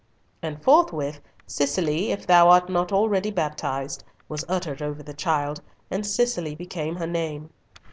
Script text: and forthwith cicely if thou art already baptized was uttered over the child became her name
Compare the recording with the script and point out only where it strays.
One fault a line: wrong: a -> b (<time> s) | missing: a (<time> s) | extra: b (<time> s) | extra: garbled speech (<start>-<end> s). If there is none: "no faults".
extra: not (2.7 s)
extra: and cicely (5.9 s)